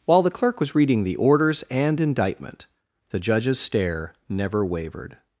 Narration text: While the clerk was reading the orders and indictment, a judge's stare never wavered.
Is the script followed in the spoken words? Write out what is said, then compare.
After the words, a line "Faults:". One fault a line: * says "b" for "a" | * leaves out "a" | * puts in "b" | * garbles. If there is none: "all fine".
While the clerk was reading the orders and indictment, the judge's stare never wavered.
Faults:
* says "the" for "a"